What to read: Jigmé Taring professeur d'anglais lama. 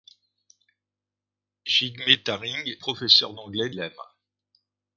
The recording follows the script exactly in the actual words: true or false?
true